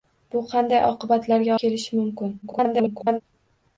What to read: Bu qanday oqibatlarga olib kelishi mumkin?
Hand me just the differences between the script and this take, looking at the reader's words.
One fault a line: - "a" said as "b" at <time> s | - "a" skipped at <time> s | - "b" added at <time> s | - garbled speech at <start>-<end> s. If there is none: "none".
- "olib" skipped at 1.5 s
- garbled speech at 2.4-3.2 s